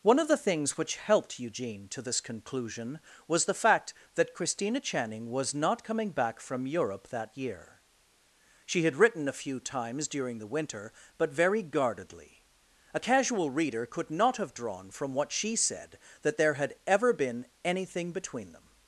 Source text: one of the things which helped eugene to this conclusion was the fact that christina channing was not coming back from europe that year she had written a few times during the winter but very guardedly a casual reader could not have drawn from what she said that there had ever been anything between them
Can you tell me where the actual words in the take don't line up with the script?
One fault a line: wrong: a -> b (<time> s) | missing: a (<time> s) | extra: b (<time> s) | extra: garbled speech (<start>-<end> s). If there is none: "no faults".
no faults